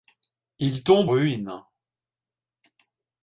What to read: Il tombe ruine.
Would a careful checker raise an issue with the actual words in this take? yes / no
no